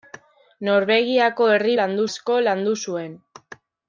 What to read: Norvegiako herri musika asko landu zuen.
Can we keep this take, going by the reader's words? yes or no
no